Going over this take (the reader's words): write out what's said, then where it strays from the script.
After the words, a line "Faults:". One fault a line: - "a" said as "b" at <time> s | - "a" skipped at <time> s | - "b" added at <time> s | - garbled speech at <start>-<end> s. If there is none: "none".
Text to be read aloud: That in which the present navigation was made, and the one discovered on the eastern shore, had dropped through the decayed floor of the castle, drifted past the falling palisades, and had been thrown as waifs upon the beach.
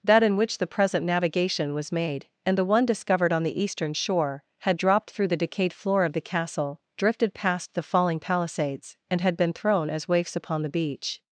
That in which the present navigation was made, and the one discovered on the eastern shore, had dropped through the decayed floor of the castle, drifted past the falling palisades, and had been thrown as waifs upon the beach.
Faults:
none